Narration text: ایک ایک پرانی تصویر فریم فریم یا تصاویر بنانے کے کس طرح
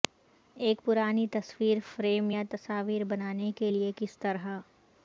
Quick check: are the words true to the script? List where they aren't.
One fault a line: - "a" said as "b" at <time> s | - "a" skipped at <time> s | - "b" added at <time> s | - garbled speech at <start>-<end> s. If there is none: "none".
- "ایک" skipped at 0.8 s
- "فریم" skipped at 2.3 s
- "لئے" added at 3.7 s